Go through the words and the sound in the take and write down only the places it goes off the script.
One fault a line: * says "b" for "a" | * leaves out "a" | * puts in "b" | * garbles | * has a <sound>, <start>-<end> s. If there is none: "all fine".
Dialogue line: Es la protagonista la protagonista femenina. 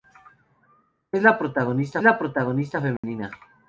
* has a dropout, 3.0-3.0 s